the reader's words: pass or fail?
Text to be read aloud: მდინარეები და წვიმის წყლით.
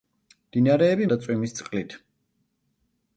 pass